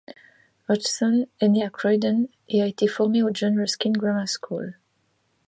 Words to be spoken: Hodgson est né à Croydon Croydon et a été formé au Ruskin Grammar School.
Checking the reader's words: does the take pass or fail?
fail